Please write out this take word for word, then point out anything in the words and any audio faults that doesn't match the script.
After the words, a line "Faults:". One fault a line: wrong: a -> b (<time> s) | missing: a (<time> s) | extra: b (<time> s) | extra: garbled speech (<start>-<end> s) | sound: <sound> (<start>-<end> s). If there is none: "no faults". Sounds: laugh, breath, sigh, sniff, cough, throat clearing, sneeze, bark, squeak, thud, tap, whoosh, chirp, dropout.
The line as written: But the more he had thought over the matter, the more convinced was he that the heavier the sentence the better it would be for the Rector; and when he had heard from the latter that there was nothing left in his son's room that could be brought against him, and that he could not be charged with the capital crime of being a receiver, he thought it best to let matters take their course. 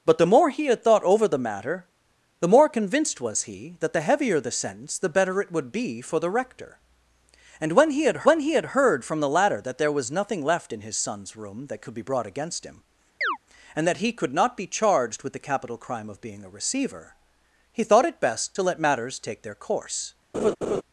But the more he had thought over the matter, the more convinced was he that the heavier the sentence the better it would be for the Rector; and when he had when he had heard from the latter that there was nothing left in his son's room that could be brought against him, and that he could not be charged with the capital crime of being a receiver, he thought it best to let matters take their course.
Faults:
extra: when he had (8.2 s)
sound: chirp (13.2-13.4 s)
sound: laugh (20.3-20.8 s)